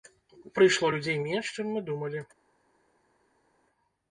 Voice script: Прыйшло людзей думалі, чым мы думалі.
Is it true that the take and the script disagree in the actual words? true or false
true